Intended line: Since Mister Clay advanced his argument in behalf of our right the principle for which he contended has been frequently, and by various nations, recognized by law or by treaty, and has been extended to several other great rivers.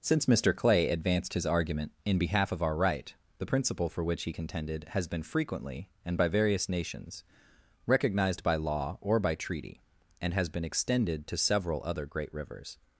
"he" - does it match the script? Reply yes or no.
yes